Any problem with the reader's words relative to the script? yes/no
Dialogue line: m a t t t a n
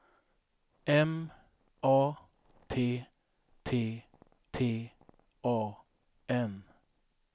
no